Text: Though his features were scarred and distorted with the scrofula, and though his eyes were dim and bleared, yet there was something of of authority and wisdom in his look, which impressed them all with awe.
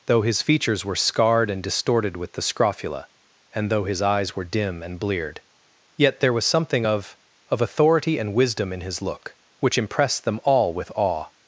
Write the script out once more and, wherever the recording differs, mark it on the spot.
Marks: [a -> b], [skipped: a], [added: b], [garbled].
Though his features were scarred and distorted with the scrofula, and though his eyes were dim and bleared, yet there was something of of authority and wisdom in his look, which impressed them all with awe.